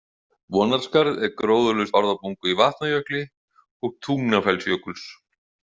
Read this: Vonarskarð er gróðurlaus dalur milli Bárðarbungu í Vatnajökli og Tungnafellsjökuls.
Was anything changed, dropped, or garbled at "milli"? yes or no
yes